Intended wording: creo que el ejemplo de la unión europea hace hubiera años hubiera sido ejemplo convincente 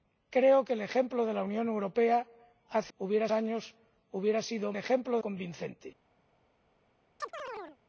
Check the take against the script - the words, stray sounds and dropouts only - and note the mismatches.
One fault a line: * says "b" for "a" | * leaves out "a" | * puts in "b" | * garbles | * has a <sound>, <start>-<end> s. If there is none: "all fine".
* has a chirp, 7.2-7.8 s